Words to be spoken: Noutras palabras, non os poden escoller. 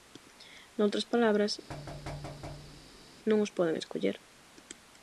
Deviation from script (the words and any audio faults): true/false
true